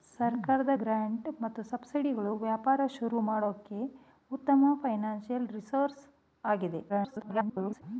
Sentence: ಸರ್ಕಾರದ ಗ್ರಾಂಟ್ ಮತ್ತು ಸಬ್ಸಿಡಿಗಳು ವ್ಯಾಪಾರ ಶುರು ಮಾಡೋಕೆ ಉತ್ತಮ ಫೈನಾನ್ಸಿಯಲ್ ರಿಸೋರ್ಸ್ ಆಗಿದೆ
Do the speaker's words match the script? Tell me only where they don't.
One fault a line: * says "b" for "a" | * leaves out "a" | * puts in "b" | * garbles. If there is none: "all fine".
* garbles